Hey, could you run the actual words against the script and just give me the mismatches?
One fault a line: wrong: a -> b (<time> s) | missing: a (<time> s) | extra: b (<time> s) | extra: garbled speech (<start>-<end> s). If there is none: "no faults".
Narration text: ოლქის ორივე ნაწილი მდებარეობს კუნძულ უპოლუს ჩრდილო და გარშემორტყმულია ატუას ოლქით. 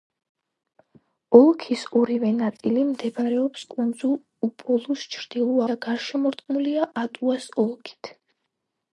no faults